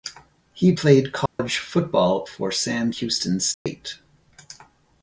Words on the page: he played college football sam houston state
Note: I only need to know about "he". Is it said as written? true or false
true